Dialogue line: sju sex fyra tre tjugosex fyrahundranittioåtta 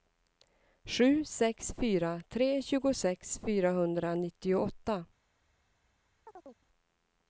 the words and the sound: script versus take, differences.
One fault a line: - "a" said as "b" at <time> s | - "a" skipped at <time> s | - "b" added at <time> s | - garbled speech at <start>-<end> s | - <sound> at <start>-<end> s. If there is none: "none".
- chirp at 6.3-6.7 s